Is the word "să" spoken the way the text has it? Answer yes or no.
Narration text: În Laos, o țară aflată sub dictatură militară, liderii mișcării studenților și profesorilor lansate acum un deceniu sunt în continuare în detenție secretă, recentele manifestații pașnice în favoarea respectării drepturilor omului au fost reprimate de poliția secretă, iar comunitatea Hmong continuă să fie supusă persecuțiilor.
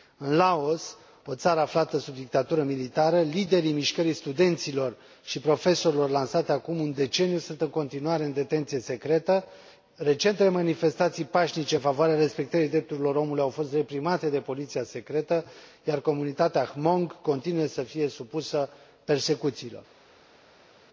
yes